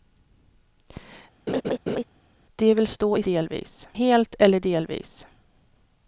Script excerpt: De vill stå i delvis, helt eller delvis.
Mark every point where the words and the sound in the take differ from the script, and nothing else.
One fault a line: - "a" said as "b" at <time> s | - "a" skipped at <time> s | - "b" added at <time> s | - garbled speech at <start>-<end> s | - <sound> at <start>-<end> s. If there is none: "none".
- laugh at 1.5-2.0 s